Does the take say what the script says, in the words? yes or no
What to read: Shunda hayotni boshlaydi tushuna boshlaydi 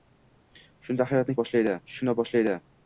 yes